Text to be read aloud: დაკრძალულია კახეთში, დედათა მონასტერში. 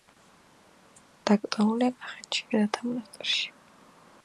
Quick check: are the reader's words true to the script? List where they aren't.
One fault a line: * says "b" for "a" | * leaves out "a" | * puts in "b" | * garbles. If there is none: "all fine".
all fine